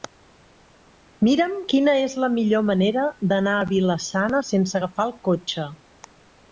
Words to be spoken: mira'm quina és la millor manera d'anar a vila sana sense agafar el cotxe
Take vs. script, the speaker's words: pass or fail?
pass